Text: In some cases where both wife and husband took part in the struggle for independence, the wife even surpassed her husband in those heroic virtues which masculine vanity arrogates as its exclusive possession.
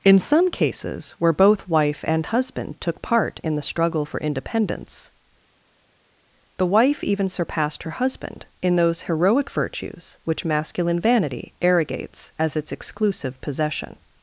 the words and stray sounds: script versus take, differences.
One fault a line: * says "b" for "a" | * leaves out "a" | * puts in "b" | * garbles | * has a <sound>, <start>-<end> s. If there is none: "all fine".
all fine